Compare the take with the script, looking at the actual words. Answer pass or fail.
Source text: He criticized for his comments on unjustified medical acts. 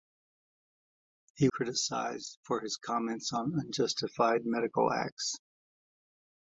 pass